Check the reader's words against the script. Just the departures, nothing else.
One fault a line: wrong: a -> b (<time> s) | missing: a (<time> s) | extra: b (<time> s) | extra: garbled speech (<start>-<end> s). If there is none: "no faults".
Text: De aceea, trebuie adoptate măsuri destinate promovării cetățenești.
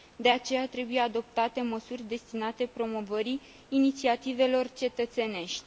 extra: inițiativelor (3.7 s)